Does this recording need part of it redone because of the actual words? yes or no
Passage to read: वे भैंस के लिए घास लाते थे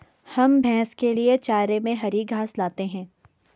yes